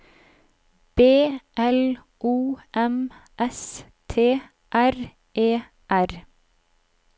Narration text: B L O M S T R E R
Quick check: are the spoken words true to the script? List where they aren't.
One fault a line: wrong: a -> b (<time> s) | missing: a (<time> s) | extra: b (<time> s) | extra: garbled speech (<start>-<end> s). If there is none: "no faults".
no faults